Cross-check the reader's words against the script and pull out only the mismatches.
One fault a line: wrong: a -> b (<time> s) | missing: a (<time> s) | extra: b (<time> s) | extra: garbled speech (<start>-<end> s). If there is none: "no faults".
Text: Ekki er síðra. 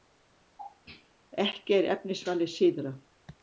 extra: efnisvalið (1.9 s)